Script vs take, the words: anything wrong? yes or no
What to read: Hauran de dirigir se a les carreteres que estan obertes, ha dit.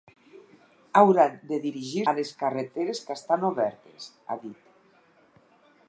yes